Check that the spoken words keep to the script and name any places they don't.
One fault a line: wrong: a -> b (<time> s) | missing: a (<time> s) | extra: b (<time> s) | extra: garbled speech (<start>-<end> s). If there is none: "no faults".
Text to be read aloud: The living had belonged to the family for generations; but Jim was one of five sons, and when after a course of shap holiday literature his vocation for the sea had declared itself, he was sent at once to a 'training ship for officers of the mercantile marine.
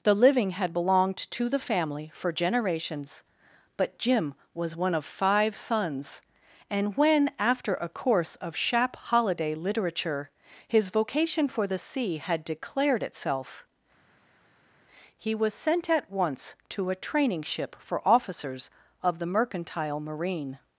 no faults